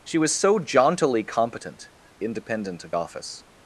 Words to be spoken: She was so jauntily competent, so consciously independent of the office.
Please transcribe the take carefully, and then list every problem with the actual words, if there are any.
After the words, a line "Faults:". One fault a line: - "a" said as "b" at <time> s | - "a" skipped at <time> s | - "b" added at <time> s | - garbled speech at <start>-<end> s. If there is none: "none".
She was so jauntily competent, independent of office.
Faults:
- "so consciously" skipped at 1.9 s
- "the" skipped at 2.9 s